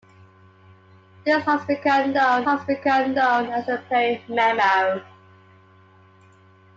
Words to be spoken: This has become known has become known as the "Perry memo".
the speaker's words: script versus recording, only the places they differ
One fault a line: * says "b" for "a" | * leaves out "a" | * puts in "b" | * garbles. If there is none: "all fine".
all fine